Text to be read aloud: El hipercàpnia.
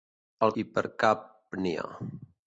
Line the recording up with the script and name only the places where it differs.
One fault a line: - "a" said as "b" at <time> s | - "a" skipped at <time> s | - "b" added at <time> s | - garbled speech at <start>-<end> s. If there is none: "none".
none